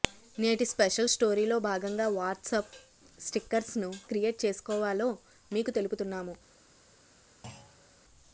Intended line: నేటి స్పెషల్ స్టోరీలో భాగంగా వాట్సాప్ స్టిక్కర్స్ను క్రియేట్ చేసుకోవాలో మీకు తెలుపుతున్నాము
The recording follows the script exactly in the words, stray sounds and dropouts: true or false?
false